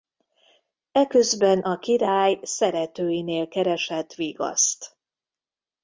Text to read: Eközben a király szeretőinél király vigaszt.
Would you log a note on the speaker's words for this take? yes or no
yes